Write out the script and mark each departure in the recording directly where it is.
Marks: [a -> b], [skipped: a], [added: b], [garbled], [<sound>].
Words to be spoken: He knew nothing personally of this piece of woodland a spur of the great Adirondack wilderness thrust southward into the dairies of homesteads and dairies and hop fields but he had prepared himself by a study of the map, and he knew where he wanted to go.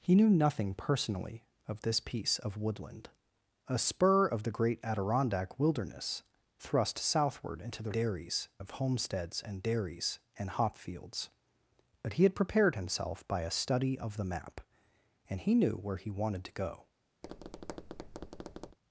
He knew nothing personally of this piece of woodland a spur of the great Adirondack wilderness thrust southward into the dairies of homesteads and dairies and hop fields but he had prepared himself by a study of the map, and he knew where he wanted to go. [tap]